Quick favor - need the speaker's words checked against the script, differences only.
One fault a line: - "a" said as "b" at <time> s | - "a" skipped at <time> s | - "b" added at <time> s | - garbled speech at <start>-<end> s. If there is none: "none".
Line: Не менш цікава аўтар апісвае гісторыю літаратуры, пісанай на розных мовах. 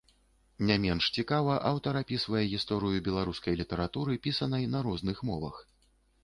- "беларускай" added at 3.1 s